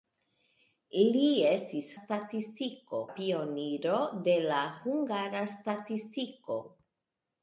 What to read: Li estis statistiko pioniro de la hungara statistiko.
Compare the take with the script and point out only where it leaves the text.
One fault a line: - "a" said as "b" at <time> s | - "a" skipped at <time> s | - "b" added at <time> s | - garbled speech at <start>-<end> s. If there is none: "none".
none